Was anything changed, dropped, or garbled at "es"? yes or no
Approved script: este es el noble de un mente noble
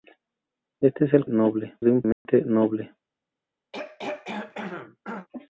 no